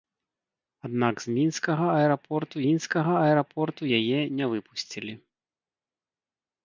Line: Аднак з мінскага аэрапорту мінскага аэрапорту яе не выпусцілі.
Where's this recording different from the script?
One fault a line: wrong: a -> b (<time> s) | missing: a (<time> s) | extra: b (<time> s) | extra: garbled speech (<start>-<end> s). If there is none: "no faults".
no faults